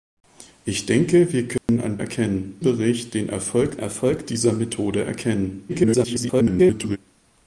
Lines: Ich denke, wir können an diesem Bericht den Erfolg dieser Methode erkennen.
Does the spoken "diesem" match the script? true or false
false